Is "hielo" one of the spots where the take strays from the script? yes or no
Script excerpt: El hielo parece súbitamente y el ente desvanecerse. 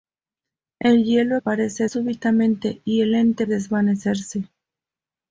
no